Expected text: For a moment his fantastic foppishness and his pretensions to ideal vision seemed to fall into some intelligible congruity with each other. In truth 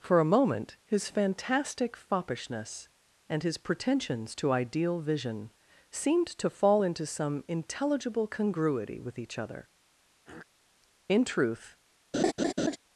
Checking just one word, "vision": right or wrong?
right